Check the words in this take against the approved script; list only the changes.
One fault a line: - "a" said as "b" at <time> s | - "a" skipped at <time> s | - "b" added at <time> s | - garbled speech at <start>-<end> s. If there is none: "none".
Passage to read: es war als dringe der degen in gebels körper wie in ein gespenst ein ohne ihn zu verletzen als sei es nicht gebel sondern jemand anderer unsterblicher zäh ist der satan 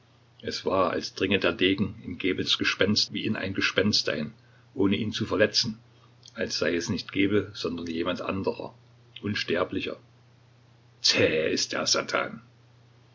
- "körper" said as "gespenst" at 2.6 s